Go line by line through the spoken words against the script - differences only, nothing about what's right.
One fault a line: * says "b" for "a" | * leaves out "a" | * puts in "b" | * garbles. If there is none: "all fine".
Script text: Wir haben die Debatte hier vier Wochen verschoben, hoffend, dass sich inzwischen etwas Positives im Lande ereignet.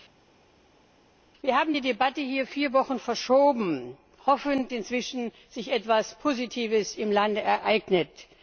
* leaves out "dass"